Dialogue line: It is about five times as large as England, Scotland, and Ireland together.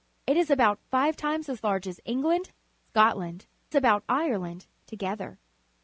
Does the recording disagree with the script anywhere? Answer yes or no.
yes